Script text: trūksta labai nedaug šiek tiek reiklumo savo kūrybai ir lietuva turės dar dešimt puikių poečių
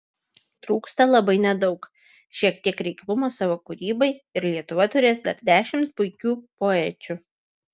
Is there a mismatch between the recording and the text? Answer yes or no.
no